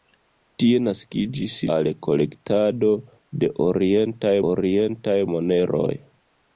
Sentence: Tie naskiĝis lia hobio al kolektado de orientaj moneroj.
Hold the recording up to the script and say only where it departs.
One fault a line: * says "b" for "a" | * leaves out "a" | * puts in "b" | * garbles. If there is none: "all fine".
* leaves out "lia hobio"
* puts in "orientaj"